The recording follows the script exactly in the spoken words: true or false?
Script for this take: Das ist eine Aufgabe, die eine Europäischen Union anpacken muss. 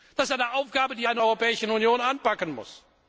true